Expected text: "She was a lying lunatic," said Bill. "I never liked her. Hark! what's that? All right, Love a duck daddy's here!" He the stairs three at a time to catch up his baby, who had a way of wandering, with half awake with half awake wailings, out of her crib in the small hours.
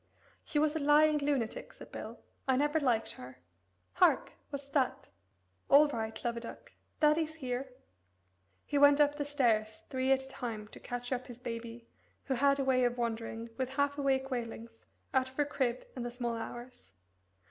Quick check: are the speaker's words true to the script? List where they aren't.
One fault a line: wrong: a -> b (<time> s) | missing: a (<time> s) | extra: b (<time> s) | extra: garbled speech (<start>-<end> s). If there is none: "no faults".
extra: went up (8.8 s)
missing: with half awake (14.3 s)